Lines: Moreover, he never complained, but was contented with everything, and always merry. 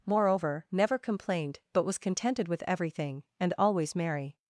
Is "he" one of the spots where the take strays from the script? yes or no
yes